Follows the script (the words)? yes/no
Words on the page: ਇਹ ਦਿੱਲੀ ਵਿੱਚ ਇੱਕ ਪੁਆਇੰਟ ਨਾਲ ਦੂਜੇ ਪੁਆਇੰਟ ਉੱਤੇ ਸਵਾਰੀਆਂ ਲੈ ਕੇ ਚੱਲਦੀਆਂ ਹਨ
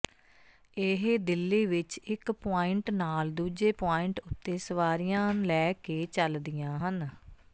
yes